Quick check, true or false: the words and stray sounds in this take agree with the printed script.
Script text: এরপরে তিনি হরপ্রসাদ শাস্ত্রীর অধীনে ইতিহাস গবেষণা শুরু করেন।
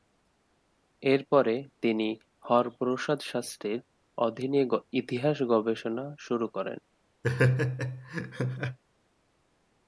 false